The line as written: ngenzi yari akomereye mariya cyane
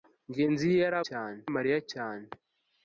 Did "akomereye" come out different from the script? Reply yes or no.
yes